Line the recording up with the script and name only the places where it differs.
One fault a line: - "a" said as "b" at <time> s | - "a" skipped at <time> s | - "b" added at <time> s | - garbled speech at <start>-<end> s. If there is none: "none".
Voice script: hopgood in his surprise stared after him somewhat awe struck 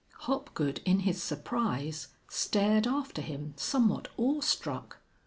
none